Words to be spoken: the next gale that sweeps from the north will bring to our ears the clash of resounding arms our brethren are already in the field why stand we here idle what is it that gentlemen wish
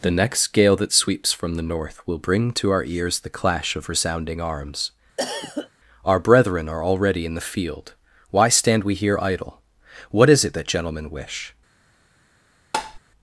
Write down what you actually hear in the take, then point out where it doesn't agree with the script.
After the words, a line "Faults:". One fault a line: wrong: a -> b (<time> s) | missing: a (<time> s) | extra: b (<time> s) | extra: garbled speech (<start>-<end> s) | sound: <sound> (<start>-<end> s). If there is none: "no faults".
the next gale that sweeps from the north will bring to our ears the clash of resounding arms our brethren are already in the field why stand we here idle what is it that gentlemen wish
Faults:
sound: cough (5.2-5.7 s)
sound: tap (12.7-13.0 s)